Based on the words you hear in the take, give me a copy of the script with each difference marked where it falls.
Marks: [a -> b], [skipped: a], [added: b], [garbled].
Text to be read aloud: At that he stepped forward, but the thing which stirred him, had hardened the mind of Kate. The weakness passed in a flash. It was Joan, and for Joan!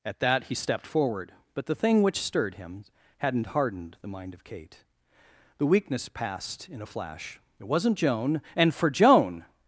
At that he stepped forward, but the thing which stirred him, [had -> hadn't] hardened the mind of Kate. The weakness passed in a flash. It [was -> wasn't] Joan, and for Joan!